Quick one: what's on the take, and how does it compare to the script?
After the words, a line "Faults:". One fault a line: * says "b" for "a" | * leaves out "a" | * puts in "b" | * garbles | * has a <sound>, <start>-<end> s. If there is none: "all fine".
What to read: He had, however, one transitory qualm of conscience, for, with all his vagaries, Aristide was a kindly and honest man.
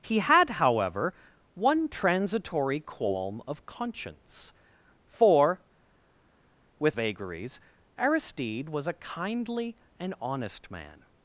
He had, however, one transitory qualm of conscience, for, with vagaries, Aristide was a kindly and honest man.
Faults:
* leaves out "all his"